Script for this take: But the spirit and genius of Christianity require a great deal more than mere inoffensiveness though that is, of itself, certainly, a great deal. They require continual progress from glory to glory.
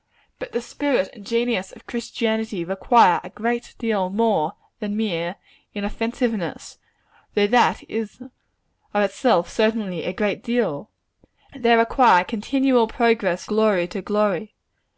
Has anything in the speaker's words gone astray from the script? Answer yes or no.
yes